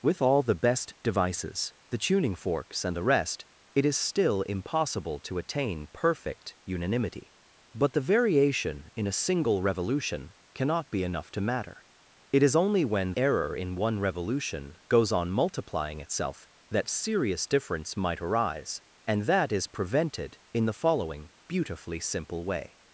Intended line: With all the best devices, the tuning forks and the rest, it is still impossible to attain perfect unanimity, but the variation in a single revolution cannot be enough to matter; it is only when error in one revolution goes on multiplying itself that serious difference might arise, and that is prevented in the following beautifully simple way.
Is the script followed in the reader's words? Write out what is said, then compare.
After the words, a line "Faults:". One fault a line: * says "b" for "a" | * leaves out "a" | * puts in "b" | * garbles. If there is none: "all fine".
With all the best devices, the tuning forks and the rest, it is still impossible to attain perfect unanimity, but the variation in a single revolution cannot be enough to matter; it is only when error in one revolution goes on multiplying itself that serious difference might arise, and that is prevented in the following beautifully simple way.
Faults:
all fine